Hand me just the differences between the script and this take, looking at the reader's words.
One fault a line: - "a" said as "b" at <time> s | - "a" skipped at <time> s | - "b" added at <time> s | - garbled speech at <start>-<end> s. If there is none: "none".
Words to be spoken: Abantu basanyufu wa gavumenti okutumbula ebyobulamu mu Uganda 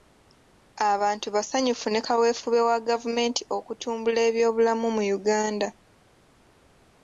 - "ne kaweefube" added at 1.9 s